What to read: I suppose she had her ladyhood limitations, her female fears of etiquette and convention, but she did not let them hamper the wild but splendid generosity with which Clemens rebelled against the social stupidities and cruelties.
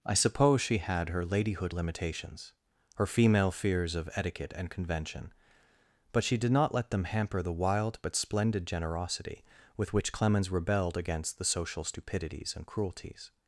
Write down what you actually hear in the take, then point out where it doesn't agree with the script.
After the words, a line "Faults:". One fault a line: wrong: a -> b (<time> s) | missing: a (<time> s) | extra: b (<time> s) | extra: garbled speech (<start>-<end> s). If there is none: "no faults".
I suppose she had her ladyhood limitations, her female fears of etiquette and convention, but she did not let them hamper the wild but splendid generosity with which Clemens rebelled against the social stupidities and cruelties.
Faults:
no faults